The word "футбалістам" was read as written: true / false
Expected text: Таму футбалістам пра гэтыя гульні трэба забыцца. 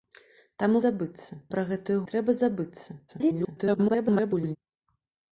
false